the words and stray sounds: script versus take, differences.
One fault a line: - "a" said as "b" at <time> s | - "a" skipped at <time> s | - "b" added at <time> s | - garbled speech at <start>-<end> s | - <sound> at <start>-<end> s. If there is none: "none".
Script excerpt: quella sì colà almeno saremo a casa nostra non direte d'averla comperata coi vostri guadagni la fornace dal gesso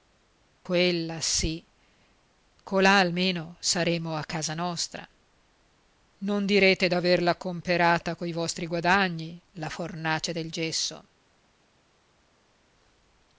- "dal" said as "del" at 10.3 s